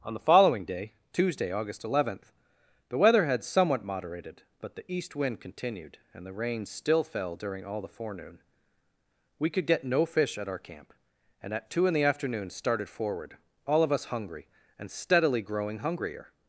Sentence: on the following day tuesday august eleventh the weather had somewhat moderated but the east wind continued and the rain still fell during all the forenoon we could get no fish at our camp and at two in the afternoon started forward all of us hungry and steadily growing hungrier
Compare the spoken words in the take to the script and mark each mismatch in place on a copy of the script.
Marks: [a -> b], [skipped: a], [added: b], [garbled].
on the following day tuesday august eleventh the weather had somewhat moderated but the east wind continued and the rain still fell during all the forenoon we could get no fish at our camp and at two in the afternoon started forward all of us hungry and steadily growing hungrier